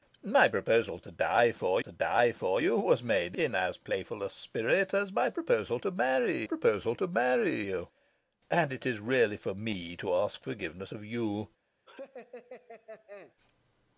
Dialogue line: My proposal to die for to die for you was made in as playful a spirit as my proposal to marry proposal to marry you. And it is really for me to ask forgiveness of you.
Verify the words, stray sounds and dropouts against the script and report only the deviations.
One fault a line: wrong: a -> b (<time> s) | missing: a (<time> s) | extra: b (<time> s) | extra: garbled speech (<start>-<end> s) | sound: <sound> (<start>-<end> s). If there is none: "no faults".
sound: laugh (11.9-13.3 s)